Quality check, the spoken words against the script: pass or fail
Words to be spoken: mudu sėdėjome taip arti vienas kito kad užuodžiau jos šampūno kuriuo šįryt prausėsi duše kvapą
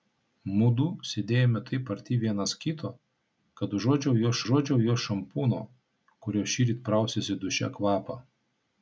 fail